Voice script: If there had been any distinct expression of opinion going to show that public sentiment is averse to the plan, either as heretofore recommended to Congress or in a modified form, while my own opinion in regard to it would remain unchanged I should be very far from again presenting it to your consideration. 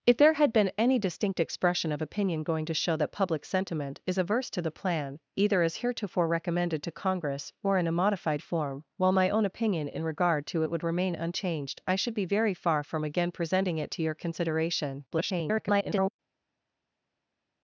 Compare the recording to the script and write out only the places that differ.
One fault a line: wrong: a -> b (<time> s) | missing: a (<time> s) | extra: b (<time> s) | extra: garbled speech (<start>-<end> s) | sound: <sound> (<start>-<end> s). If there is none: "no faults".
extra: garbled speech (15.1-16.1 s)